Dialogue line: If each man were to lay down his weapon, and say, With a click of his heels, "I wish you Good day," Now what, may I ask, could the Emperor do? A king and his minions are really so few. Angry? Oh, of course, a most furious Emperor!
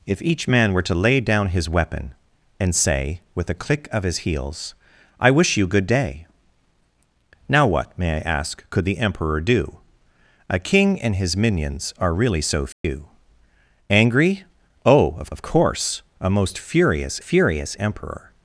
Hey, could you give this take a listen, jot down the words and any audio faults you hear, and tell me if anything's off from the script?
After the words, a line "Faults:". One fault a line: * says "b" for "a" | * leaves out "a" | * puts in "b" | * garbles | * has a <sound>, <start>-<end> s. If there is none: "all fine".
If each man were to lay down his weapon, and say, With a click of his heels, "I wish you Good day," Now what, may I ask, could the Emperor do? A king and his minions are really so few. Angry? Oh, of of course, a most furious furious Emperor!
Faults:
* has a dropout, 12.7-12.8 s
* puts in "of"
* puts in "furious"